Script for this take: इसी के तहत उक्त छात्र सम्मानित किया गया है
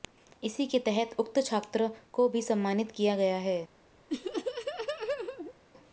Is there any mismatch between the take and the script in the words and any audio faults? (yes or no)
yes